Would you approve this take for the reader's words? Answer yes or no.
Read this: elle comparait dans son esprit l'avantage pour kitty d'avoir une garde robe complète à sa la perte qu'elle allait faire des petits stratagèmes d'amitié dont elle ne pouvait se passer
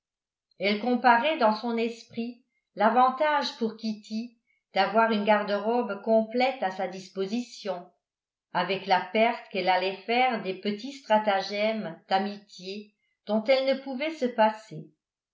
no